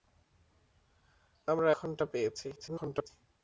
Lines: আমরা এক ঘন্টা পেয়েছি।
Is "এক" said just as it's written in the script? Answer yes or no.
no